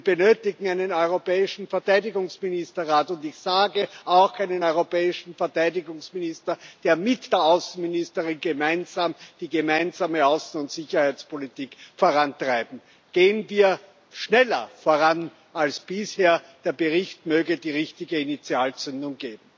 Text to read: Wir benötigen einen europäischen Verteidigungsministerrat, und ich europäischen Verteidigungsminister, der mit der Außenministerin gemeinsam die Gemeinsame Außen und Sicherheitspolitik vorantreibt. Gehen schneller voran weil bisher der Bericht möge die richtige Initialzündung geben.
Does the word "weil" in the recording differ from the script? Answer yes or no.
yes